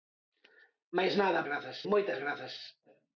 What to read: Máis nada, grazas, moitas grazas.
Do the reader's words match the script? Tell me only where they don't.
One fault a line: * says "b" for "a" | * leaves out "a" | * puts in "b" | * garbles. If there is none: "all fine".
all fine